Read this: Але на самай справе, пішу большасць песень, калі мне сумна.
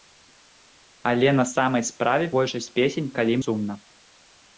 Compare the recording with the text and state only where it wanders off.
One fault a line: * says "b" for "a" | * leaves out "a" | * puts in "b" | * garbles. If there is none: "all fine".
* leaves out "пішу"
* leaves out "мне"